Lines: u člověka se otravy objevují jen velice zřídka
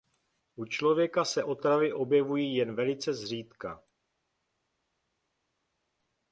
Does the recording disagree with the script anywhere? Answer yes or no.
no